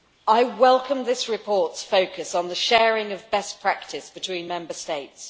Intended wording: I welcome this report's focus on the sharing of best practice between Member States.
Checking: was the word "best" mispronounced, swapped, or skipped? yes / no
no